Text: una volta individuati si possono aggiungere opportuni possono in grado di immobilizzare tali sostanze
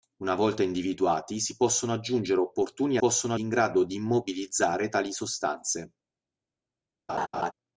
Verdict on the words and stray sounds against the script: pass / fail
fail